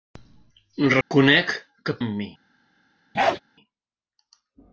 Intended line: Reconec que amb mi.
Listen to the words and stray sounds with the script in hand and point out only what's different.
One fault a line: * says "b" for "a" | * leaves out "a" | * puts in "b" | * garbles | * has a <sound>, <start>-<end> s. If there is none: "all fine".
* has a dropout, 1.0-1.1 s
* has a bark, 3.1-3.4 s